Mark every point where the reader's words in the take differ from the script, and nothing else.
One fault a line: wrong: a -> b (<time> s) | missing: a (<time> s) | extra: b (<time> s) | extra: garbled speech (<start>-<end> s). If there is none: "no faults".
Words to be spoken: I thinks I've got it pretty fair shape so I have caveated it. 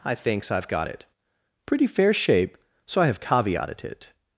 no faults